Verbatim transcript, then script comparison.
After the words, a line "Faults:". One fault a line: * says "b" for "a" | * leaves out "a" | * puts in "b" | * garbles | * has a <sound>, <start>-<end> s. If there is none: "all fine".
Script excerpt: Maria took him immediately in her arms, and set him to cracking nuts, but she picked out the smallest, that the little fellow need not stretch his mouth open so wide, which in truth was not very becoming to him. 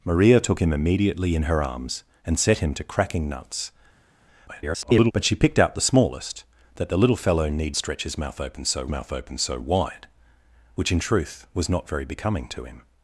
Maria took him immediately in her arms, and set him to cracking nuts, [garbled] but she picked out the smallest, that the little fellow need stretch his mouth open so mouth open so wide, which in truth was not very becoming to him.
Faults:
* garbles
* leaves out "not"
* puts in "mouth open so"